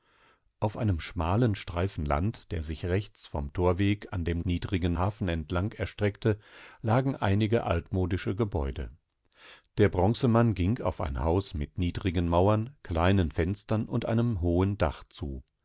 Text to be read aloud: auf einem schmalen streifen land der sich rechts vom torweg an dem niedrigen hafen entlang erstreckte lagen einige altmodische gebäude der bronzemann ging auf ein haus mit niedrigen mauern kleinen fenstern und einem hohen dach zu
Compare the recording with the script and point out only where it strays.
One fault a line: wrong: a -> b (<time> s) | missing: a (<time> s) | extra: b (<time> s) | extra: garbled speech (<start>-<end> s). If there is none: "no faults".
no faults